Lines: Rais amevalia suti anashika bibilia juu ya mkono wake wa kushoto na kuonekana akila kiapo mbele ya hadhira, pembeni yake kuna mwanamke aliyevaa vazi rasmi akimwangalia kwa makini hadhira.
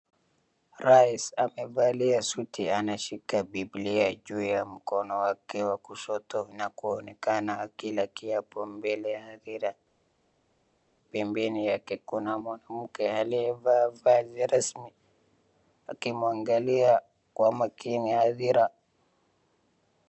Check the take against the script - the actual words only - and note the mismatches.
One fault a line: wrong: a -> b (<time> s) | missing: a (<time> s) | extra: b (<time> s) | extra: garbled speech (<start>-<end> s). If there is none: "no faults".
no faults